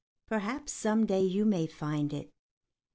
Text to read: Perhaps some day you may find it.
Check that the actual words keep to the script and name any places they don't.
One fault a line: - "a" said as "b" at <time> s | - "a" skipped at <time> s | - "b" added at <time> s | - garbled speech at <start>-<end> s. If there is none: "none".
none